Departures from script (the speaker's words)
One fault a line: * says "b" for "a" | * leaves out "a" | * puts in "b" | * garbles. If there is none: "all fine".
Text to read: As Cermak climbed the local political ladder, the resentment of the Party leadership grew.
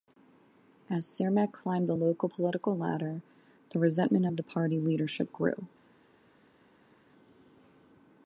all fine